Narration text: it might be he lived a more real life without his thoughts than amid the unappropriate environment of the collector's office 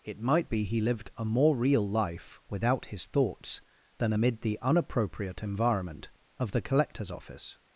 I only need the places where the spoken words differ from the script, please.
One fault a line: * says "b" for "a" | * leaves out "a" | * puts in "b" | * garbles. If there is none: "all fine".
all fine